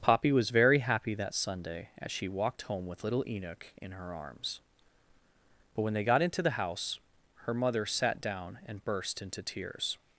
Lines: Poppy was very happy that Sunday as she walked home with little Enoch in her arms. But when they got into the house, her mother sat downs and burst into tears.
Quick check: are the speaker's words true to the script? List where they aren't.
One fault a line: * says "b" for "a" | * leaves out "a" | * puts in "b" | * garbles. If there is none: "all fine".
* says "down" for "downs"